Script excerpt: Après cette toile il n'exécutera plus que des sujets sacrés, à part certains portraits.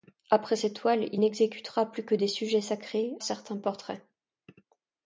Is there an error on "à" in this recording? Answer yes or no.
yes